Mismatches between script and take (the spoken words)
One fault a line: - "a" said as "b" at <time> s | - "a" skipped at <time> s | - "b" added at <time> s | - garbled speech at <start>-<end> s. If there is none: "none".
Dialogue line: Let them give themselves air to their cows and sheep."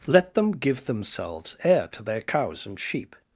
none